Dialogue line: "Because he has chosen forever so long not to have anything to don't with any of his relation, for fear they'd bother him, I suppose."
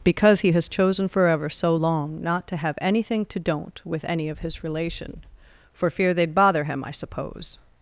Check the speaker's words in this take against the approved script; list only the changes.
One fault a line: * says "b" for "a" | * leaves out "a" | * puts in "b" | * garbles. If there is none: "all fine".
all fine